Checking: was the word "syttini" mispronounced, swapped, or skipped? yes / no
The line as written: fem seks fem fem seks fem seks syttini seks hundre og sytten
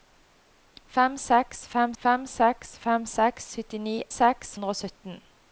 no